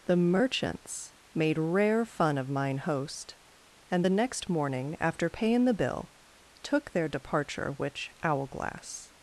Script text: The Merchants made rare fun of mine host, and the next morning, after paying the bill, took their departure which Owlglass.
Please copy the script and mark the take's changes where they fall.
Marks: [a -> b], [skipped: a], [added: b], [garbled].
The Merchants made rare fun of mine host, and the next morning, after paying the bill, took their departure which Owlglass.